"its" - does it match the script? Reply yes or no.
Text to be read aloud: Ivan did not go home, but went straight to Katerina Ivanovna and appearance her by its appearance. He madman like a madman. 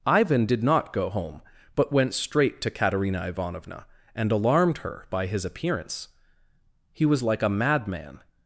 no